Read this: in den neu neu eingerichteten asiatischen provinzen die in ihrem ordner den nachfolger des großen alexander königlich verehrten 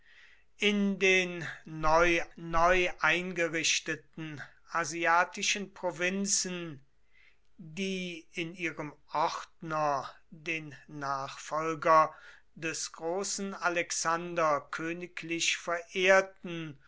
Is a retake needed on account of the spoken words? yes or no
no